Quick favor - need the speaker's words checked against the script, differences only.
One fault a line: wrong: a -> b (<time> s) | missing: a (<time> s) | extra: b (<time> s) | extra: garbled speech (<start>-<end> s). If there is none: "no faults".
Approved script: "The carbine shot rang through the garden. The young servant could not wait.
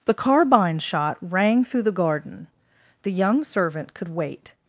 missing: not (4.1 s)